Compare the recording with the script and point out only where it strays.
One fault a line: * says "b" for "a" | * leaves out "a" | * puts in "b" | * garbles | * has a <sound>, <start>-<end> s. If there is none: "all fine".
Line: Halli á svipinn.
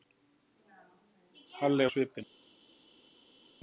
all fine